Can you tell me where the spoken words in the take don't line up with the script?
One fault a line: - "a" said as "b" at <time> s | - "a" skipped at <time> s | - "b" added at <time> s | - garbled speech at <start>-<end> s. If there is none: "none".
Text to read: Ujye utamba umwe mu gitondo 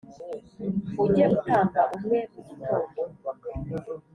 none